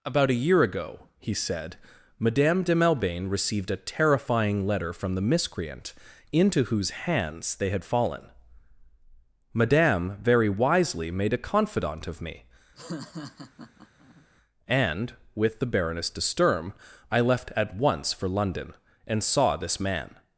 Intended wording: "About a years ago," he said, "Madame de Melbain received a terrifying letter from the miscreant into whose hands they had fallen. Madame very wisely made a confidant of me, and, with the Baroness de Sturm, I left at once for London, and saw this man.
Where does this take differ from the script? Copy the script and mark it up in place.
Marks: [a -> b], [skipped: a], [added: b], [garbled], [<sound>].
"About a [years -> year] ago," he said, "Madame de Melbain received a terrifying letter from the miscreant into whose hands they had fallen. Madame very wisely made a confidant of me, [laugh] and, with the Baroness de Sturm, I left at once for London, and saw this man.